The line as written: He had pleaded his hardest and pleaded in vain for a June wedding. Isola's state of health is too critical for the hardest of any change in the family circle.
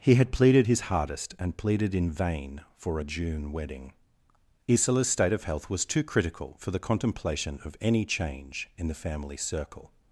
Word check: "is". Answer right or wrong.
wrong